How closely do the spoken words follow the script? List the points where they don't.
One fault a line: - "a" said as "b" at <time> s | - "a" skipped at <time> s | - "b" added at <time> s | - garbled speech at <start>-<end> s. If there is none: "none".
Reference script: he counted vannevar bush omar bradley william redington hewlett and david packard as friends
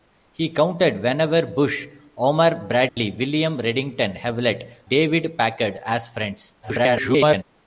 - "and" skipped at 4.8 s
- garbled speech at 6.6-7.4 s